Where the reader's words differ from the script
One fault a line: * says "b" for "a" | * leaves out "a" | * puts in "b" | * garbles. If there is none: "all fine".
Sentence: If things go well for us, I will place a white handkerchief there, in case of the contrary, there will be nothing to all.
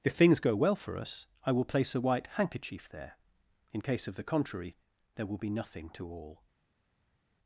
all fine